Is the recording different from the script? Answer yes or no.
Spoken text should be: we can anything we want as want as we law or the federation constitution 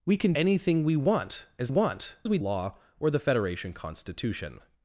no